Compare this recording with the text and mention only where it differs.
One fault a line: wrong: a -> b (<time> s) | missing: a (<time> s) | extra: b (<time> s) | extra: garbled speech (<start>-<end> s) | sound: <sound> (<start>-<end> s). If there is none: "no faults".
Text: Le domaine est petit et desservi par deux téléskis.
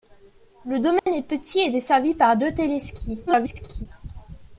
sound: dropout (1.0-1.1 s)
extra: garbled speech (3.3-3.9 s)